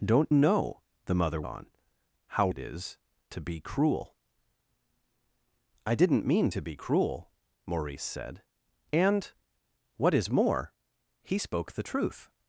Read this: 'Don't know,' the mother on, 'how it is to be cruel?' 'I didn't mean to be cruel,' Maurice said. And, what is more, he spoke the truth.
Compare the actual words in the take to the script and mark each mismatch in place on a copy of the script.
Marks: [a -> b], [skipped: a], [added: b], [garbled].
'Don't know,' the mother on, 'how it is to be cruel?' 'I didn't mean to be cruel,' Maurice said. And, what is more, he spoke the truth.